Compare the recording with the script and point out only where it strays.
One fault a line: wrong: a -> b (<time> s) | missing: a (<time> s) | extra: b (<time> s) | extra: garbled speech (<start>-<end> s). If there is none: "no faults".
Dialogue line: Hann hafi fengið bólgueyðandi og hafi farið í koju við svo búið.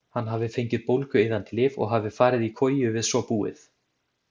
extra: lyf (1.6 s)